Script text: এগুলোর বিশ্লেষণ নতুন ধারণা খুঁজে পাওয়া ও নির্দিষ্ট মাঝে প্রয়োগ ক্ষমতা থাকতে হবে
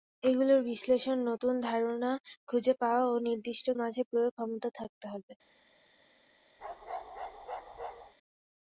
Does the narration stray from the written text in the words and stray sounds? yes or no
yes